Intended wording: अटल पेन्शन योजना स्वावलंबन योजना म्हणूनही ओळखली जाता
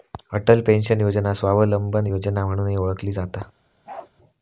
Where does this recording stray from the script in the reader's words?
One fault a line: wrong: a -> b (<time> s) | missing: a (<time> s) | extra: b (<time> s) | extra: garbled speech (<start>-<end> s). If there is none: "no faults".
no faults